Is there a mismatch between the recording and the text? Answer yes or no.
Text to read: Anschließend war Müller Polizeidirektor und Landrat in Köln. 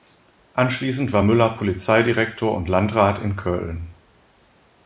no